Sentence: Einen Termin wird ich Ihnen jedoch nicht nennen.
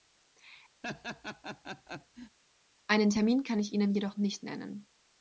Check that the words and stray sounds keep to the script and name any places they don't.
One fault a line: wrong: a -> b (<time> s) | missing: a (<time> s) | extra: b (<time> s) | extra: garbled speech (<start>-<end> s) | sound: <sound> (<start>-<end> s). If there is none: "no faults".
sound: laugh (0.8-2.4 s)
wrong: wird -> kann (3.4 s)